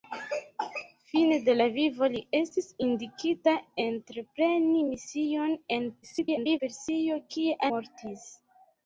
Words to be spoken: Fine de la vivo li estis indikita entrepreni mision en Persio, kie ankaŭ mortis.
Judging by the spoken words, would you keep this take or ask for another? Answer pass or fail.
fail